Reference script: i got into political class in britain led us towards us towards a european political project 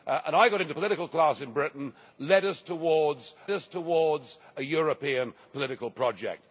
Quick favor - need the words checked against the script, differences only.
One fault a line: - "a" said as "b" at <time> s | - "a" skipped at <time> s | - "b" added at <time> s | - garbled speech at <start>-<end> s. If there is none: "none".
none